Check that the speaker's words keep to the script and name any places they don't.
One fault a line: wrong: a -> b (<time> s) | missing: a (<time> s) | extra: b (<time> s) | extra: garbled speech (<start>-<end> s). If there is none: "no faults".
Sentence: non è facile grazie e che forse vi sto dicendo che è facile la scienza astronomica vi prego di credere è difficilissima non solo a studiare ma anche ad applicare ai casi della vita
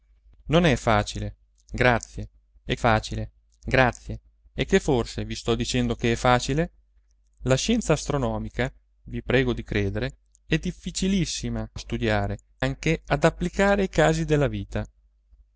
extra: facile grazie e (2.7 s)
missing: non solo (11.7 s)
missing: ma (12.4 s)